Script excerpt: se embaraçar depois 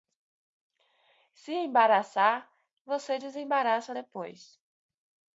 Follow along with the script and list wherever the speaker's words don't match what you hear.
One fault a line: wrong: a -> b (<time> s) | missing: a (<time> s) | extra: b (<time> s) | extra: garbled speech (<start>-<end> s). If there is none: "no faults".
extra: você desembaraça (2.9 s)